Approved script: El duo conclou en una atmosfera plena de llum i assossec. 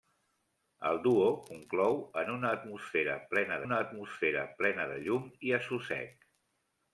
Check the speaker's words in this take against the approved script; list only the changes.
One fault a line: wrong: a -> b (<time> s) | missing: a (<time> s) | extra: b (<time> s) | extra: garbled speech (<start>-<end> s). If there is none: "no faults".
extra: una atmosfera plena (3.6 s)